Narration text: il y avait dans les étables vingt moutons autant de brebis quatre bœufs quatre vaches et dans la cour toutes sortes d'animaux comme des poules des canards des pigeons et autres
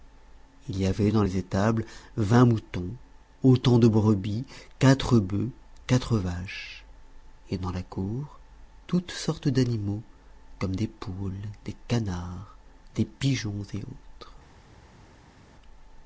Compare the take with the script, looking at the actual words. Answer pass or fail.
pass